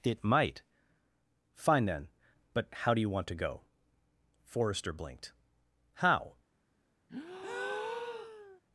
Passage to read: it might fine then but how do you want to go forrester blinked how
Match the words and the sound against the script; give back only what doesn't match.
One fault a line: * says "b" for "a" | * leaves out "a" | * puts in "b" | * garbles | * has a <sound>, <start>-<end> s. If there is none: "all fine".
* has a breath, 7.1-8.6 s